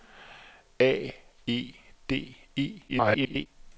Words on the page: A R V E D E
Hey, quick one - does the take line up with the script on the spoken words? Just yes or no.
no